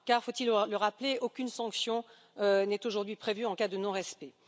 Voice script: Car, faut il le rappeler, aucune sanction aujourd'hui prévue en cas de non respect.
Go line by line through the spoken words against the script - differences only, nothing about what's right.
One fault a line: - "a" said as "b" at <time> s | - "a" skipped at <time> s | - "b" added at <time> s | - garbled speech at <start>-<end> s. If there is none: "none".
- "n'est" added at 2.4 s